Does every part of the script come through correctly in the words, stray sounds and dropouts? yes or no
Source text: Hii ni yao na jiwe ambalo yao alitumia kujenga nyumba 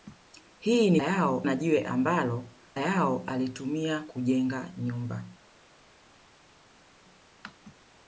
yes